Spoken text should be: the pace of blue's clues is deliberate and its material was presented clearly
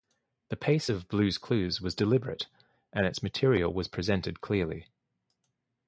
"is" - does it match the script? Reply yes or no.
no